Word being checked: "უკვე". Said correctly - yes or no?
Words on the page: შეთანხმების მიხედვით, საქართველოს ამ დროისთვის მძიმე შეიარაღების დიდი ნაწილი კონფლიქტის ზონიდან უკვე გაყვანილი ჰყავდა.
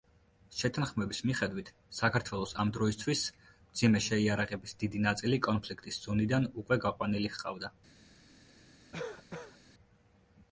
yes